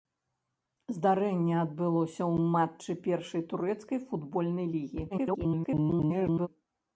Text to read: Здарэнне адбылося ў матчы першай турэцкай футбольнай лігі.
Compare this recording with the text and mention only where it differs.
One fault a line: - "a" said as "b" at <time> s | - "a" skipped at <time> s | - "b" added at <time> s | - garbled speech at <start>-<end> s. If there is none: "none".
- garbled speech at 5.1-6.5 s